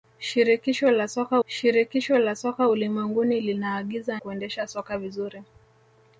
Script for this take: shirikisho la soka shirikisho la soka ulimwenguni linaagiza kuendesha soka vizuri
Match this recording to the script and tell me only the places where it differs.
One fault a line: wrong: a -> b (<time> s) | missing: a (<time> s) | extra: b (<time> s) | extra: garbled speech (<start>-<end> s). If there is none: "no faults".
no faults